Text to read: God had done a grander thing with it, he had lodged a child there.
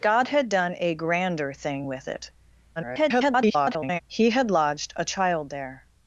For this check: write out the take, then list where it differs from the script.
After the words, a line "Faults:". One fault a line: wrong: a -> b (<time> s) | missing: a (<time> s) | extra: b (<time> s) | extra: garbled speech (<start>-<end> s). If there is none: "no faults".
God had done a grander thing with it, [garbled] he had lodged a child there.
Faults:
extra: garbled speech (2.8-4.0 s)